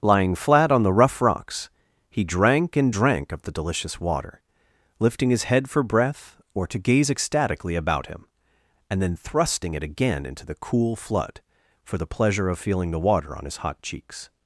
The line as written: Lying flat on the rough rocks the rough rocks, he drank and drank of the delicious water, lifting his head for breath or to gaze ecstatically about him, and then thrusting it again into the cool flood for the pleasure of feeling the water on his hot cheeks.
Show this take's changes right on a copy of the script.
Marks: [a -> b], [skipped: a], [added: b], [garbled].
Lying flat on the rough rocks [skipped: the rough rocks,] he drank and drank of the delicious water, lifting his head for breath or to gaze ecstatically about him, and then thrusting it again into the cool flood for the pleasure of feeling the water on his hot cheeks.